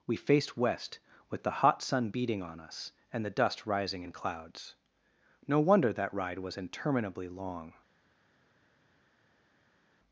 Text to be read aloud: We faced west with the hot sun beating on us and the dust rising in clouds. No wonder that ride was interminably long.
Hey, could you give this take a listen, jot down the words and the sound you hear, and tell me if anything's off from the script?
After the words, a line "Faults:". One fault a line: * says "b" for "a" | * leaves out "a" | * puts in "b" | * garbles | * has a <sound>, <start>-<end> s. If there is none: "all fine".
We faced west with the hot sun beating on us and the dust rising in clouds. No wonder that ride was interminably long.
Faults:
all fine